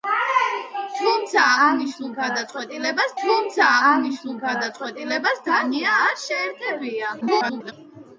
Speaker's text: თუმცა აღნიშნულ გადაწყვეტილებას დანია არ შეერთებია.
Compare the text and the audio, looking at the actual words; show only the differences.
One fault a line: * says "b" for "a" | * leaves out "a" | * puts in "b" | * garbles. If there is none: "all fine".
* puts in "თუმცა აღნიშნულ გადაწყვეტილებას"
* garbles